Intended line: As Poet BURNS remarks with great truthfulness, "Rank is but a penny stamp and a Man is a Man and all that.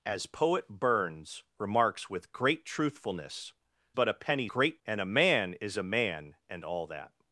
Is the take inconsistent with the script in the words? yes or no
yes